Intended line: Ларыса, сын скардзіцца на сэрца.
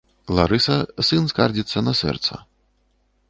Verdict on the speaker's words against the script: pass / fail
pass